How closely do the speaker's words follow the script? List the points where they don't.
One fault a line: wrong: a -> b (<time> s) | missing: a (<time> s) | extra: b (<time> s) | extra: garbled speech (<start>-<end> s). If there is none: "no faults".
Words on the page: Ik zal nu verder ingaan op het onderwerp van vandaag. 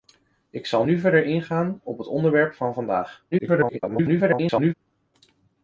extra: garbled speech (3.3-4.7 s)